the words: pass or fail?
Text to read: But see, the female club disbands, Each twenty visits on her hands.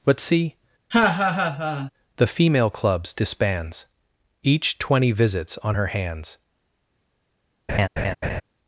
fail